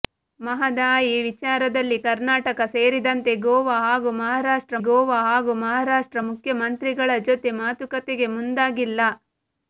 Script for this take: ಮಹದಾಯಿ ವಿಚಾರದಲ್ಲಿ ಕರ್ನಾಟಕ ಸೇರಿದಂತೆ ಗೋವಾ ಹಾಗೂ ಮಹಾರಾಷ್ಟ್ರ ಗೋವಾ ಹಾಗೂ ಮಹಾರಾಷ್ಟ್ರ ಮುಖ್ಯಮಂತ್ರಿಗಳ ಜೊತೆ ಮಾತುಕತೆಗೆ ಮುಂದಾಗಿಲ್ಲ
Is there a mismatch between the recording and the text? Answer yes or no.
no